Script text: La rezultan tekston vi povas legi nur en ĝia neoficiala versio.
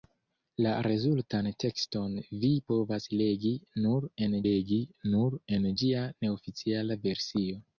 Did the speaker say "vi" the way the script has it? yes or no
yes